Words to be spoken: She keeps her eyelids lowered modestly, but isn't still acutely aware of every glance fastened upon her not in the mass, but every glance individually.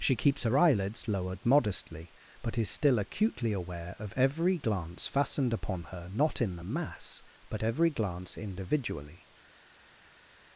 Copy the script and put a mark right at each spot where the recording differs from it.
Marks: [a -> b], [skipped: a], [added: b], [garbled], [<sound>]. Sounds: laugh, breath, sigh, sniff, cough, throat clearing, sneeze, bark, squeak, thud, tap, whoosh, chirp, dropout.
She keeps her eyelids lowered modestly, but [isn't -> is] still acutely aware of every glance fastened upon her not in the mass, but every glance individually.